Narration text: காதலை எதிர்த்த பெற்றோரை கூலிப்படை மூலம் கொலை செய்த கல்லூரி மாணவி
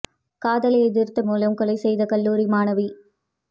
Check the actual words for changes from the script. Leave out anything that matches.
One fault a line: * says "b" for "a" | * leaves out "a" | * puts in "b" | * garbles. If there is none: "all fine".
* leaves out "பெற்றோரை கூலிப்படை"